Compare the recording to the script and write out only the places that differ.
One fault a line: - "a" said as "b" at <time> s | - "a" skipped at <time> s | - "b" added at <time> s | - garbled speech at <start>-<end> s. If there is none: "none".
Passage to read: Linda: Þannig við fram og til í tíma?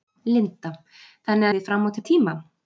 none